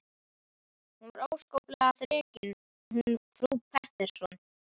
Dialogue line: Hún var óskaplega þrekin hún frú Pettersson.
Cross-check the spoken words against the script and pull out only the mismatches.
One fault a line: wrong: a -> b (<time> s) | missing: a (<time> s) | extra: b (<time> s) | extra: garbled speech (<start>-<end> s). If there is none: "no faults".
no faults